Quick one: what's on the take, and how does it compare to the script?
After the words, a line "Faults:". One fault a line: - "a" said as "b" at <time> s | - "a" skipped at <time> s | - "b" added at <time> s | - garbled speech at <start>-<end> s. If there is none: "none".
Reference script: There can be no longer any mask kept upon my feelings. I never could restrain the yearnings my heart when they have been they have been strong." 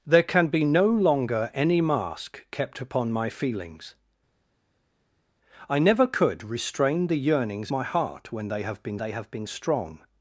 There can be no longer any mask kept upon my feelings. I never could restrain the yearnings my heart when they have been they have been strong."
Faults:
none